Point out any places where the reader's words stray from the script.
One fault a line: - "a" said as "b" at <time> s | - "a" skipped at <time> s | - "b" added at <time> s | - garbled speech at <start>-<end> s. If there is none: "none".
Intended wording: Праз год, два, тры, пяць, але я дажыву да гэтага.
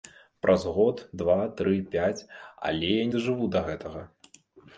none